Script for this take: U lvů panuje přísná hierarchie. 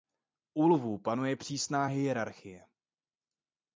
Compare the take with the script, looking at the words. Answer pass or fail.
pass